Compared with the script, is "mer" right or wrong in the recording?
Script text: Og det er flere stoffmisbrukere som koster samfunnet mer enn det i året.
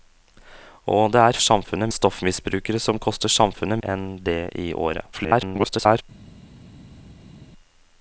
wrong